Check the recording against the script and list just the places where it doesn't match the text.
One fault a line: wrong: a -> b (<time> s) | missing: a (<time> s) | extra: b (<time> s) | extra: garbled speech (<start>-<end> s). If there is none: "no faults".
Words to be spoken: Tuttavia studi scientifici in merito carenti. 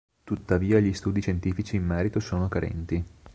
extra: gli (0.8 s)
extra: sono (2.2 s)